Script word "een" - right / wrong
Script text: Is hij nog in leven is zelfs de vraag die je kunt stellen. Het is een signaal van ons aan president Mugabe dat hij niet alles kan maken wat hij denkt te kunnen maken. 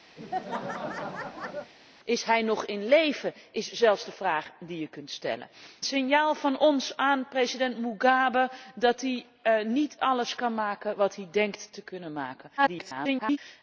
wrong